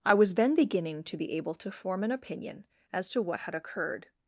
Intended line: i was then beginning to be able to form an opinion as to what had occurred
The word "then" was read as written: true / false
true